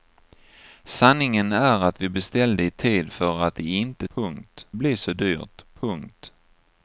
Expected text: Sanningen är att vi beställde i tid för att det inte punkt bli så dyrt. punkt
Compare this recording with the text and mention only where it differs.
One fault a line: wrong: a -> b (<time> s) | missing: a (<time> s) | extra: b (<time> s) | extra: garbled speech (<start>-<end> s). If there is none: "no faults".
no faults